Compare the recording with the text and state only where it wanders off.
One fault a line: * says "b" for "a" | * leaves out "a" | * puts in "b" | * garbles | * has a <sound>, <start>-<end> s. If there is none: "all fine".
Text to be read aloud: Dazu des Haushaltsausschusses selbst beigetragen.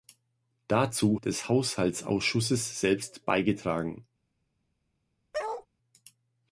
* has a bark, 5.3-5.7 s